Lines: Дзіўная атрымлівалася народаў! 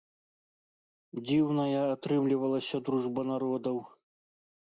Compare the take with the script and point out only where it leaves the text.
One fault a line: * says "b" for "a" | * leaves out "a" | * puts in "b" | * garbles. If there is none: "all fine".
* puts in "дружба"